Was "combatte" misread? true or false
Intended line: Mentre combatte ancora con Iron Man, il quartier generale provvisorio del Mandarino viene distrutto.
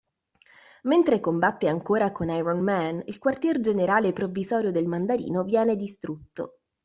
false